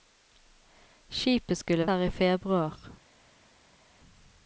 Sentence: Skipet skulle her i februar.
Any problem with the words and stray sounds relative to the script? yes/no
no